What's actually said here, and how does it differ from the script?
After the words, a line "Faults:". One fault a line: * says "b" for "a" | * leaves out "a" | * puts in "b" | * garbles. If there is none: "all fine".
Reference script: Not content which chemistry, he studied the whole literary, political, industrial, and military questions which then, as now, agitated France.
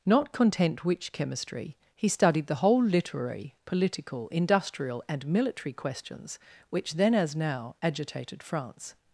Not content which chemistry, he studied the whole literary, political, industrial, and military questions which then, as now, agitated France.
Faults:
all fine